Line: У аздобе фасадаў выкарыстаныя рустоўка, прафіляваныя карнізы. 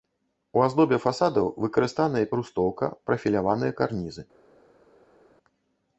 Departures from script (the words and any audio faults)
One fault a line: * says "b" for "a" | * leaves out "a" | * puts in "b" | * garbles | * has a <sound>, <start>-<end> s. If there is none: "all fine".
all fine